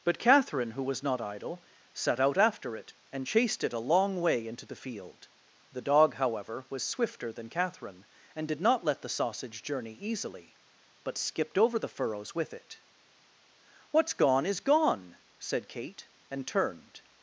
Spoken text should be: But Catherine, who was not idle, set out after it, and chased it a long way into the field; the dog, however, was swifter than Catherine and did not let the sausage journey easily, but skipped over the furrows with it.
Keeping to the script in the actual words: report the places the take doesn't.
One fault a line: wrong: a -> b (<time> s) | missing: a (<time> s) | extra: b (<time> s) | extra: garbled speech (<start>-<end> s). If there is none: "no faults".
extra: What's gone is gone said Kate and turned (13.9 s)